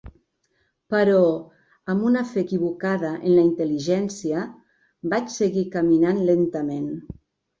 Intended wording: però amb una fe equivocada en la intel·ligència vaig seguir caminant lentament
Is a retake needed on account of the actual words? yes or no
no